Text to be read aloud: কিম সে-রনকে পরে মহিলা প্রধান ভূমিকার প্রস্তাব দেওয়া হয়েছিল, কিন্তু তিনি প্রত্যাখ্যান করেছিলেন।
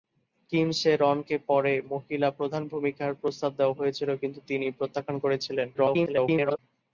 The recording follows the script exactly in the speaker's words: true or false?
false